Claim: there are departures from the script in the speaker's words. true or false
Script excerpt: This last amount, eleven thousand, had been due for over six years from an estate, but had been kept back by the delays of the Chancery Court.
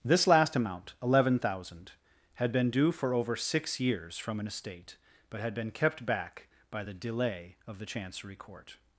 true